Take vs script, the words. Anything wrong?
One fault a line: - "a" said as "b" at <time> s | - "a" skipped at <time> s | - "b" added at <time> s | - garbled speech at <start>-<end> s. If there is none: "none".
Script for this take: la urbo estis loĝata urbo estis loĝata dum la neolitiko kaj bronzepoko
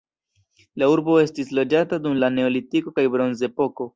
- "urbo estis loĝata" skipped at 2.0 s